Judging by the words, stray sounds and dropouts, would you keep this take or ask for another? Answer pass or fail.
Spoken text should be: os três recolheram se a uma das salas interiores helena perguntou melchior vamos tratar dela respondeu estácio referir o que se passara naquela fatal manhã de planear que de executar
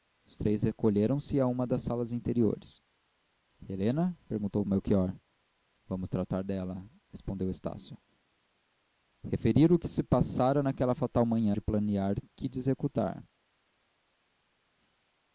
pass